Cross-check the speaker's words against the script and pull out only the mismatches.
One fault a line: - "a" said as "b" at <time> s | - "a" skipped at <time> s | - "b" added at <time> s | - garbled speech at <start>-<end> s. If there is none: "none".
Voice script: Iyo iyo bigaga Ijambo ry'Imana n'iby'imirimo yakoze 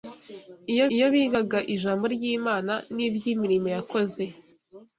none